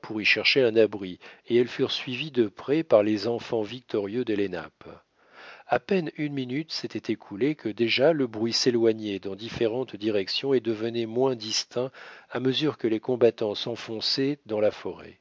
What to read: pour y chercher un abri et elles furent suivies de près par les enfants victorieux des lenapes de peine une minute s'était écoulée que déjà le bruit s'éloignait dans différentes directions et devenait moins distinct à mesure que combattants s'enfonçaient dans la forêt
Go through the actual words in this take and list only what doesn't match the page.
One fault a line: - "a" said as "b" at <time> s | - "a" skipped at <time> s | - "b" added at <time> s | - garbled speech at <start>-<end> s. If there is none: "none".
- "de" said as "à" at 5.7 s
- "les" added at 12.9 s